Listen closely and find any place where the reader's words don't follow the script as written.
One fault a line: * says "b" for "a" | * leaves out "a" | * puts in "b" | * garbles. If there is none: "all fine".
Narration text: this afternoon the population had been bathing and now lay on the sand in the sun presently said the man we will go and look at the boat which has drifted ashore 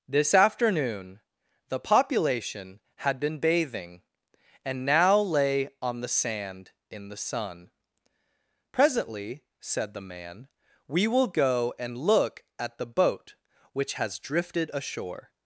all fine